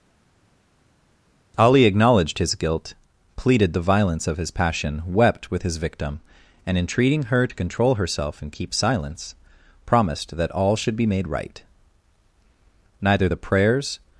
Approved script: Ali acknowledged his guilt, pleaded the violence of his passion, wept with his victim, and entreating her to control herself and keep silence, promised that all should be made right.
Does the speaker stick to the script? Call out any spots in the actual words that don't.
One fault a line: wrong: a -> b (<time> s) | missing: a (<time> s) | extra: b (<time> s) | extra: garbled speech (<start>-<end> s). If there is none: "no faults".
extra: Neither the prayers (13.0 s)